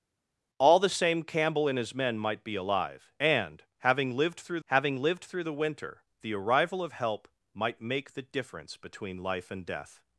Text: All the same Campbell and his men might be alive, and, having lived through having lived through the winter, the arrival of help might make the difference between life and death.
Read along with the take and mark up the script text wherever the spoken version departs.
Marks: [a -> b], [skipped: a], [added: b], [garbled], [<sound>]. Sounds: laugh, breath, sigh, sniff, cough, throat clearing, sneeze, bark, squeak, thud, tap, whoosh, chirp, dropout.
All the same Campbell and his men might be alive, and, having lived through having lived through the winter, the arrival of help might make the difference between life and death.